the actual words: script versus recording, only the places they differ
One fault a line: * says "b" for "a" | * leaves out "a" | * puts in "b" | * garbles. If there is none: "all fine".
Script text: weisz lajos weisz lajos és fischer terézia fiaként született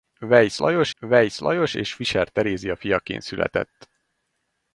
all fine